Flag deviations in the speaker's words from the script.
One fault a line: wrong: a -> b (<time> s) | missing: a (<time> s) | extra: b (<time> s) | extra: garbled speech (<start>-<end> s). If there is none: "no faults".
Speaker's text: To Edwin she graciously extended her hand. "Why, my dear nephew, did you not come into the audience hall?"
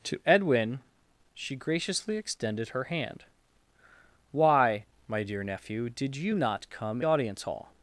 missing: into the (7.0 s)